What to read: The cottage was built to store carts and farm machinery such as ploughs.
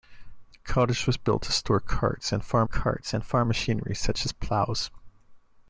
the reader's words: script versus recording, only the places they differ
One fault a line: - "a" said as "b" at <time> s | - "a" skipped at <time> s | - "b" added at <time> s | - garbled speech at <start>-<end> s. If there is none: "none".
- "carts and farm" added at 2.6 s